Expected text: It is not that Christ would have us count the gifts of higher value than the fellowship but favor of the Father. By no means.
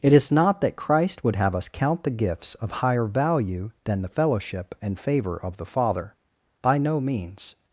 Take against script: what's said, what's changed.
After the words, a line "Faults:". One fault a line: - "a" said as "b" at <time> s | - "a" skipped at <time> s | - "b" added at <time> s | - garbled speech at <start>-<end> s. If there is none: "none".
It is not that Christ would have us count the gifts of higher value than the fellowship and favor of the Father. By no means.
Faults:
- "but" said as "and" at 4.8 s